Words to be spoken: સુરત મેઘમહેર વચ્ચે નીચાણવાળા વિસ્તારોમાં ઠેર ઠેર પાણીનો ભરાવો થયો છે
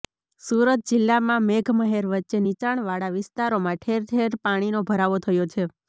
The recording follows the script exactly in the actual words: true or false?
false